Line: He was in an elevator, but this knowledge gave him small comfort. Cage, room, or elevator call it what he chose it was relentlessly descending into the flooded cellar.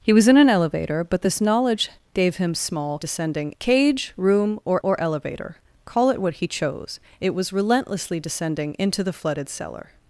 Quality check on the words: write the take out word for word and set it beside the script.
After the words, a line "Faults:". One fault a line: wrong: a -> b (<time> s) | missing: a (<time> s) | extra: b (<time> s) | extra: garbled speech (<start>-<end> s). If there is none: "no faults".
He was in an elevator, but this knowledge gave him small descending. Cage, room, or or elevator call it what he chose it was relentlessly descending into the flooded cellar.
Faults:
wrong: comfort -> descending (3.0 s)
extra: or (4.8 s)